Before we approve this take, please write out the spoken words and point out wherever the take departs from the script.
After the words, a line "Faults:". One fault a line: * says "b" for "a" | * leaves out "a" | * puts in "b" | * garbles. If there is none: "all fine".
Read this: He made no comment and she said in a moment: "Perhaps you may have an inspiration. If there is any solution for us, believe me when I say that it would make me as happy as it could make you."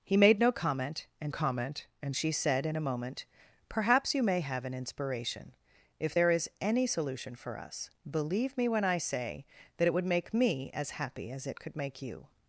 He made no comment and comment and she said in a moment: "Perhaps you may have an inspiration. If there is any solution for us, believe me when I say that it would make me as happy as it could make you."
Faults:
* puts in "comment and"